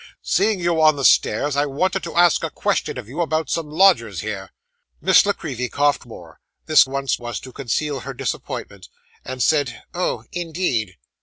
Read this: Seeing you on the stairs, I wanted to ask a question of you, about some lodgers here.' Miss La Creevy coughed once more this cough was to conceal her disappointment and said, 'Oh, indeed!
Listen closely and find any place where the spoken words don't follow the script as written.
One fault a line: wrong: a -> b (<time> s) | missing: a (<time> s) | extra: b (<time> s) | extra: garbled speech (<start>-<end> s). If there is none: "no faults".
missing: once (6.1 s)
wrong: cough -> once (6.9 s)